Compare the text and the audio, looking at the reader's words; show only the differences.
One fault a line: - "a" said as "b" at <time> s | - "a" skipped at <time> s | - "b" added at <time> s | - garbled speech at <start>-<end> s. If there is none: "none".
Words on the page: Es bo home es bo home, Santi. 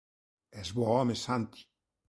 - "es bo home" skipped at 1.1 s